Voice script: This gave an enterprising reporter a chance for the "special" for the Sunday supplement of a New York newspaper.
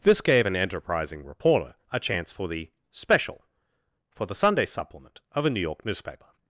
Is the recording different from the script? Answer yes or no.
no